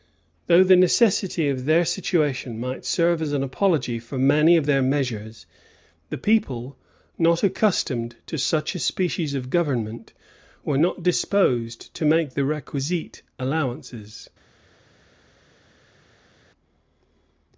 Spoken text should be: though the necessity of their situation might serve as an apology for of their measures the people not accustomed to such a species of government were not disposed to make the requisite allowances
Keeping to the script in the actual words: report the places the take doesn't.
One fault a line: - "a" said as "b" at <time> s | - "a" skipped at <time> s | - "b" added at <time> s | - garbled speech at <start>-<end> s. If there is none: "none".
- "many" added at 4.2 s